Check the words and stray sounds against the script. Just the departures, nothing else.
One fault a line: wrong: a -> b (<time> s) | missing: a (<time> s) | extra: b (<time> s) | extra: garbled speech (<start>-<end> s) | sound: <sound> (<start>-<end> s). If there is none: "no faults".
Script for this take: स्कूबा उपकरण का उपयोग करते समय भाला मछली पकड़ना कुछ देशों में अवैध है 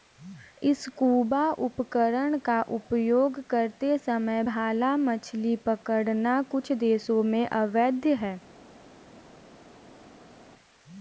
no faults